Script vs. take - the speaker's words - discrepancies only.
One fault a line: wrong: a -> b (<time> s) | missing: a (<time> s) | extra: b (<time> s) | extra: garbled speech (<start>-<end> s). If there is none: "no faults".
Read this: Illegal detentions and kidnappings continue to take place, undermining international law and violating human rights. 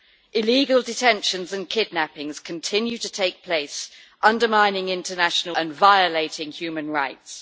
missing: law (5.5 s)